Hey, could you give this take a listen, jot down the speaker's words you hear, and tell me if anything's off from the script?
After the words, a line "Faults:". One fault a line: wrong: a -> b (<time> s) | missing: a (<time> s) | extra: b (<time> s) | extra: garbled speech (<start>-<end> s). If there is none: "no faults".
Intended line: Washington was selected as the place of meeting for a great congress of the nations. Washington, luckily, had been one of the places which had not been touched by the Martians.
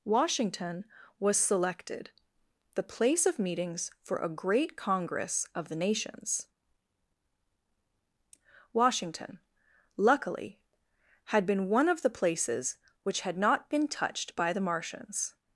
Washington was selected the place of meetings for a great congress of the nations. Washington, luckily, had been one of the places which had not been touched by the Martians.
Faults:
missing: as (2.1 s)
wrong: meeting -> meetings (3.4 s)